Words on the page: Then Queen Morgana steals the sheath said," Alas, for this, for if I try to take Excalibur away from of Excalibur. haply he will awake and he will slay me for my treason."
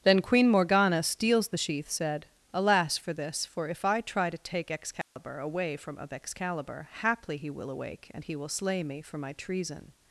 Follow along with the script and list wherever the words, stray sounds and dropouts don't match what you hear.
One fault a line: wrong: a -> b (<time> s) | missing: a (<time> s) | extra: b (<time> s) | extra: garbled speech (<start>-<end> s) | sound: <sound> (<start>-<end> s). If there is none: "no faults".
sound: dropout (5.0-5.2 s)